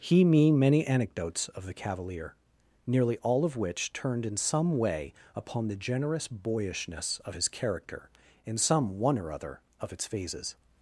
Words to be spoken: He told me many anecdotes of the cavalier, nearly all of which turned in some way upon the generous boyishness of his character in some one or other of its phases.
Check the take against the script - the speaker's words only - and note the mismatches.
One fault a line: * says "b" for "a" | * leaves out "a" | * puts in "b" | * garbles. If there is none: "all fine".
* leaves out "told"